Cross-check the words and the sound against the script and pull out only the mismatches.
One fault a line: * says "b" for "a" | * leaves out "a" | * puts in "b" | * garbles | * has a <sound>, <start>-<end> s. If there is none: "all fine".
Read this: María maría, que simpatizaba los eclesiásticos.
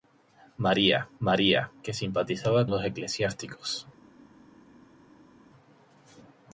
all fine